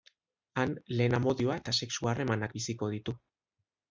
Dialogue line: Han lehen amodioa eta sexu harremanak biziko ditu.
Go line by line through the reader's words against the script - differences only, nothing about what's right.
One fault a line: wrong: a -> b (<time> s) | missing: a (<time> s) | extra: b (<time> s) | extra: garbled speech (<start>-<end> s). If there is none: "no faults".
no faults